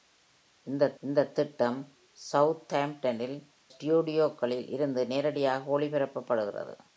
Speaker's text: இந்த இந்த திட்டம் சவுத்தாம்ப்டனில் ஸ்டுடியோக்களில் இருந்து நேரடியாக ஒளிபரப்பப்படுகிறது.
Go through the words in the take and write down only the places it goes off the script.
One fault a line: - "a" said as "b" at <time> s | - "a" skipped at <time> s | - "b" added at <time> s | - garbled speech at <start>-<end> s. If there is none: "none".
none